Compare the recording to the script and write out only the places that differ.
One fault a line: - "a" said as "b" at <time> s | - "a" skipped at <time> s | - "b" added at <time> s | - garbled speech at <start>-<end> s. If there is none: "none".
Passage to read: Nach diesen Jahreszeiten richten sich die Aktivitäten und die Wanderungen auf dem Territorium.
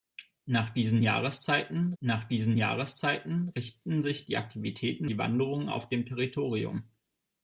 - "nach diesen Jahreszeiten" added at 2.0 s
- "und" skipped at 5.1 s